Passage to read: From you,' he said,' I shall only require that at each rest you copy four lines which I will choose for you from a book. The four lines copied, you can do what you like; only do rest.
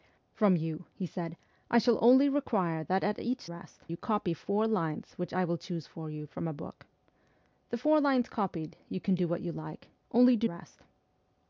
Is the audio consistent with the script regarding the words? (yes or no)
yes